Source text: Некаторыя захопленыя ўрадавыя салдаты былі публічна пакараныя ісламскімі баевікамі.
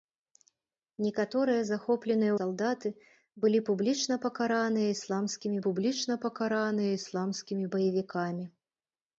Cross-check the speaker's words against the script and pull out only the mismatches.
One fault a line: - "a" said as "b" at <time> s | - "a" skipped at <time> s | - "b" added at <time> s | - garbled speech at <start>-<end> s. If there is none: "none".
- "ўрадавыя" skipped at 2.3 s
- "публічна пакараныя ісламскімі" added at 5.7 s